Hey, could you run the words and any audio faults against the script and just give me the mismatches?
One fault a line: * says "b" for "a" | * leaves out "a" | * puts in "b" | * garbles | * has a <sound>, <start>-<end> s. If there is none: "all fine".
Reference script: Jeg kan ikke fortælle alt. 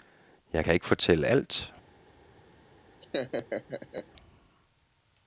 * has a laugh, 3.0-4.1 s